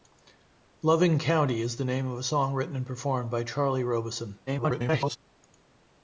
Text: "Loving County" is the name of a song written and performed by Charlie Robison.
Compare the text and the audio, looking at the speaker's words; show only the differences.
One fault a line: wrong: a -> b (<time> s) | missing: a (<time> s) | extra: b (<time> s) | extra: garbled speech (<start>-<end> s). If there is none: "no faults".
extra: garbled speech (4.5-5.2 s)